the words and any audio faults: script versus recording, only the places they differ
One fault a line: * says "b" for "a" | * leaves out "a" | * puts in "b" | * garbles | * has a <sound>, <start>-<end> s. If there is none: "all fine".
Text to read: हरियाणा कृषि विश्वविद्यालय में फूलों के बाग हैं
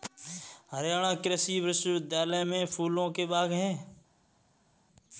all fine